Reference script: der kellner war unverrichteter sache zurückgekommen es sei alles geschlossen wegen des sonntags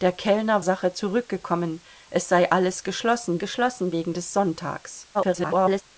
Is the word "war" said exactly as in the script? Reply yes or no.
no